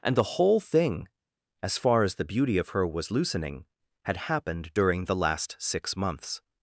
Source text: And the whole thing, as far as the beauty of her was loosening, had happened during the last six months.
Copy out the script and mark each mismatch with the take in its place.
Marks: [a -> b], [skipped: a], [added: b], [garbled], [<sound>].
And the whole thing, as far as the beauty of her was loosening, had happened during the last six months.